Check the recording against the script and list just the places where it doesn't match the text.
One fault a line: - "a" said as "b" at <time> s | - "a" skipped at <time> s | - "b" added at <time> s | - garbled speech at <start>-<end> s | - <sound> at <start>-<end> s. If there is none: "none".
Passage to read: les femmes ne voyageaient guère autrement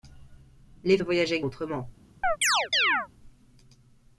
- "femmes" skipped at 1.0 s
- "guère" skipped at 1.4 s
- chirp at 2.2-3.1 s